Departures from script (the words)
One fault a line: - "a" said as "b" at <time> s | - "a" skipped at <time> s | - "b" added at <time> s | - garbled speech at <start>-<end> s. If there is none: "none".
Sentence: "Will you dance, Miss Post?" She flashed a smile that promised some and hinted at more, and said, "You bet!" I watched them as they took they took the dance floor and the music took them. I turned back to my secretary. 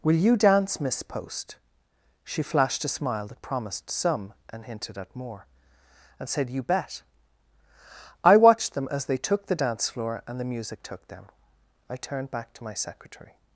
- "they took" skipped at 9.4 s